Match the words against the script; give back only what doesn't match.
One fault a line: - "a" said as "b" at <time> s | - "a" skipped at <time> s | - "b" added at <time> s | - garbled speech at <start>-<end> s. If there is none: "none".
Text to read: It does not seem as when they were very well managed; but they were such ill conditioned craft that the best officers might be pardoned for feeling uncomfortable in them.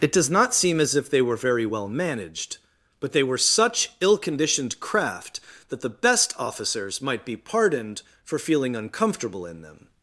- "when" said as "if" at 0.9 s